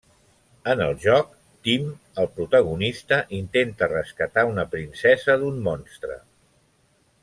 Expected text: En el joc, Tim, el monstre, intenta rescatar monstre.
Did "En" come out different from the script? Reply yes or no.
no